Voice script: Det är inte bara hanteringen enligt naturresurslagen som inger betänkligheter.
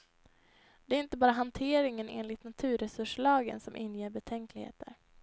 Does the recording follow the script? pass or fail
pass